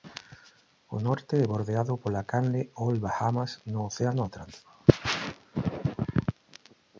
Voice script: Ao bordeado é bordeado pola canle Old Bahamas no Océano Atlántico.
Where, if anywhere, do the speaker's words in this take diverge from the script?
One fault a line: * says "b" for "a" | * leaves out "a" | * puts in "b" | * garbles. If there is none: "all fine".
* says "norte" for "bordeado"